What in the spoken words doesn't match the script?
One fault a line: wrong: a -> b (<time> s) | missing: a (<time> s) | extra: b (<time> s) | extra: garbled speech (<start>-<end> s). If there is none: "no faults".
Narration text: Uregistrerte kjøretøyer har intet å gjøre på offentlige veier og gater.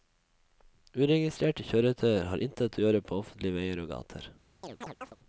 no faults